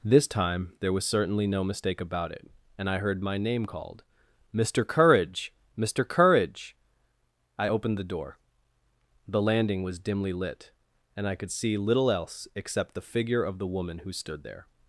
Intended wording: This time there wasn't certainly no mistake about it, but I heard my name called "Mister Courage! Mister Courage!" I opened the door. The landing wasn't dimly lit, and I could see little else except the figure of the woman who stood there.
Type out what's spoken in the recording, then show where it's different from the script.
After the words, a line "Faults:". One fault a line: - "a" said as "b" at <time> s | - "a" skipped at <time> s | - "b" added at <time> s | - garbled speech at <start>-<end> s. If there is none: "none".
This time there was certainly no mistake about it, and I heard my name called "Mister Courage! Mister Courage!" I opened the door. The landing was dimly lit, and I could see little else except the figure of the woman who stood there.
Faults:
- "wasn't" said as "was" at 0.9 s
- "but" said as "and" at 2.8 s
- "wasn't" said as "was" at 9.8 s